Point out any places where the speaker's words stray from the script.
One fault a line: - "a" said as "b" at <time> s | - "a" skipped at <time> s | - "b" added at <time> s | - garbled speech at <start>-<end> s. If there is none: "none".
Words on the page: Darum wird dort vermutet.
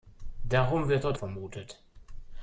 none